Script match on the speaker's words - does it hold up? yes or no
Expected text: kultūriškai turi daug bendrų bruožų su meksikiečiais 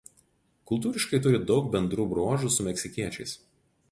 yes